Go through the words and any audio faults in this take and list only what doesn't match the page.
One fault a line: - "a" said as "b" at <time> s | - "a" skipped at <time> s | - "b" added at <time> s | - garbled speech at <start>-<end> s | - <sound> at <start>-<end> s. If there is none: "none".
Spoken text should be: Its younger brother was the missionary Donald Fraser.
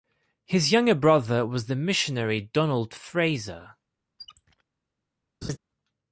- "Its" said as "His" at 0.5 s
- squeak at 4.2-4.6 s
- laugh at 5.4-5.6 s